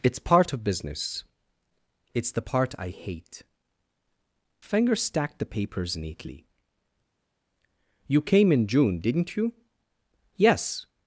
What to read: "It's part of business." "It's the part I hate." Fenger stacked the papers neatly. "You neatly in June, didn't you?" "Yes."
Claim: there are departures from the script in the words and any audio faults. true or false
true